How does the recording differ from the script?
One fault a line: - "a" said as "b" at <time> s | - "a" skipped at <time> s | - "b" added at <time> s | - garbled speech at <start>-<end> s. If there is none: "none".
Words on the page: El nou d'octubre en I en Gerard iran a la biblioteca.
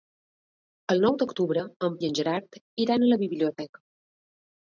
none